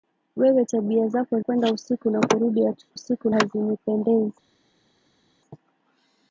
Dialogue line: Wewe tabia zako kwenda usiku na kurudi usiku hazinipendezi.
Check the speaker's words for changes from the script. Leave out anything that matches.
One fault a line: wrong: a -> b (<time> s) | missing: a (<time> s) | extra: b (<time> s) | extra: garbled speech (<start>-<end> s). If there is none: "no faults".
no faults